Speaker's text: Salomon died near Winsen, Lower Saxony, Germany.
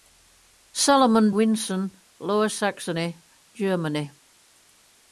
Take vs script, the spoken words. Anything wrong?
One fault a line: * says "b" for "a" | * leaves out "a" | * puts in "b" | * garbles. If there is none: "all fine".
* leaves out "died near"